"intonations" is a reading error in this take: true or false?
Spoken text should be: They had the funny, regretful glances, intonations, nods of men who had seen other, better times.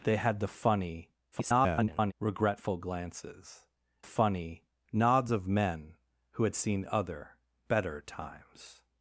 true